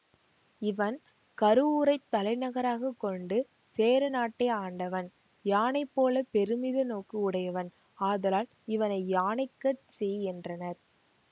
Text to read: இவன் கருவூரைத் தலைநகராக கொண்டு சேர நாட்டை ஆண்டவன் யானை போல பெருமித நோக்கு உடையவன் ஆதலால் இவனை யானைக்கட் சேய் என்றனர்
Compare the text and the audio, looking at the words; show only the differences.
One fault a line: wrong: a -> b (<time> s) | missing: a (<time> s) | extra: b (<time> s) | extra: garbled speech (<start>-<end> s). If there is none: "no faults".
no faults